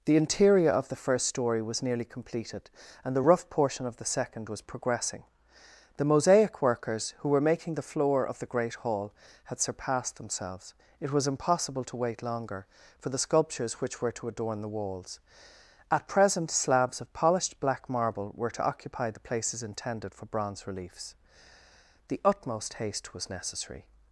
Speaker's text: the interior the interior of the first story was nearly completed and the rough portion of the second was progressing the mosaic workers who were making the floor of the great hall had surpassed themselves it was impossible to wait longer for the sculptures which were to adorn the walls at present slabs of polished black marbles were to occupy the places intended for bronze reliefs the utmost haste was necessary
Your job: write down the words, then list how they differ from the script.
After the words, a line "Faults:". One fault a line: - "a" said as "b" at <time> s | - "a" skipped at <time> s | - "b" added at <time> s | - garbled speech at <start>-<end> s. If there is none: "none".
the interior of the first story was nearly completed and the rough portion of the second was progressing the mosaic workers who were making the floor of the great hall had surpassed themselves it was impossible to wait longer for the sculptures which were to adorn the walls at present slabs of polished black marble were to occupy the places intended for bronze reliefs the utmost haste was necessary
Faults:
- "the interior" skipped at 0.7 s
- "marbles" said as "marble" at 17.9 s